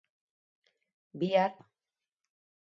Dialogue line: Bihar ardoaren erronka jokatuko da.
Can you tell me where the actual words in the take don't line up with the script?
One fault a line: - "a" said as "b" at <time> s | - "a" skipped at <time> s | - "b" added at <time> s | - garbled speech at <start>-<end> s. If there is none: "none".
- "ardoaren erronka jokatuko" skipped at 1.5 s